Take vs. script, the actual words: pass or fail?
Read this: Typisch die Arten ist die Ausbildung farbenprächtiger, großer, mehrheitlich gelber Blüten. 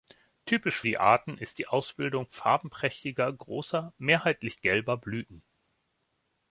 pass